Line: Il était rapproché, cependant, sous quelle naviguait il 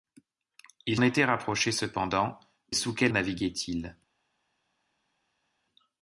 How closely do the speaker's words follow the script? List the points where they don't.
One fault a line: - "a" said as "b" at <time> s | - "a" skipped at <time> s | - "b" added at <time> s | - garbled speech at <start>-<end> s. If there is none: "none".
none